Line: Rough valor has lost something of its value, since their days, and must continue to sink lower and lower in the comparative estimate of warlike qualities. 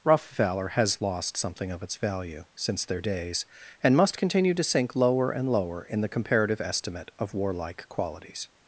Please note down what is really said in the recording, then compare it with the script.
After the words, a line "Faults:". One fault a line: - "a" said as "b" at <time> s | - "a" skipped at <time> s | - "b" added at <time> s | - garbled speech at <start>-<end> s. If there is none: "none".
Rough valor has lost something of its value, since their days, and must continue to sink lower and lower in the comparative estimate of warlike qualities.
Faults:
none